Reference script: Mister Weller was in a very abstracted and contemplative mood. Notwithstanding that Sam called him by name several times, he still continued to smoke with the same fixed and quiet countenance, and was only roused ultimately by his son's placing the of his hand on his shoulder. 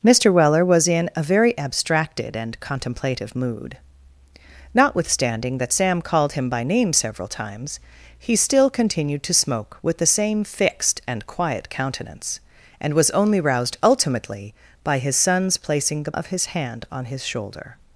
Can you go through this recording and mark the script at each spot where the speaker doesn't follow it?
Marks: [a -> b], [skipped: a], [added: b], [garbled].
Mister Weller was in a very abstracted and contemplative mood. Notwithstanding that Sam called him by name several times, he still continued to smoke with the same fixed and quiet countenance, and was only roused ultimately by his son's placing the of his hand on his shoulder.